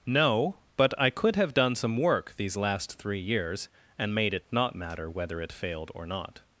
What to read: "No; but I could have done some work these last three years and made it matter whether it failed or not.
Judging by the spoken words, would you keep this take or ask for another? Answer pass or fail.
fail